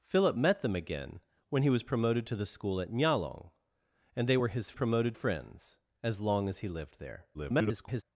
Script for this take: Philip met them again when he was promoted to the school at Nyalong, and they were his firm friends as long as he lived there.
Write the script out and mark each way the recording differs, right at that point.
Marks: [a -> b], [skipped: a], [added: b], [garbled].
Philip met them again when he was promoted to the school at Nyalong, and they were his [firm -> promoted] friends as long as he lived there. [garbled]